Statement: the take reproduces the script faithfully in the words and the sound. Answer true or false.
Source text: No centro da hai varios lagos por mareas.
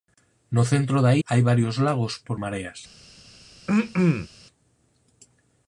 false